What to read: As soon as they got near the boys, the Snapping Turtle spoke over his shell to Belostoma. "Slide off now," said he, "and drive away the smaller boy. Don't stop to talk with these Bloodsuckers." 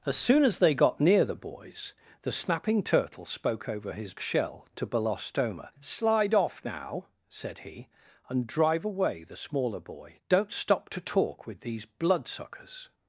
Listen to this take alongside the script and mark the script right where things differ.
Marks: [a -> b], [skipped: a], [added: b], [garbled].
As soon as they got near the boys, the Snapping Turtle spoke over his shell to Belostoma. "Slide off now," said he, "and drive away the smaller boy. Don't stop to talk with these Bloodsuckers."